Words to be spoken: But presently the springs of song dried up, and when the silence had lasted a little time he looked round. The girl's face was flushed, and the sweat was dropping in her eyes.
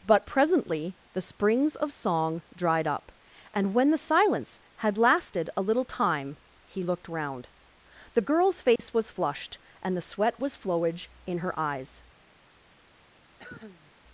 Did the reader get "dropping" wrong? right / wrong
wrong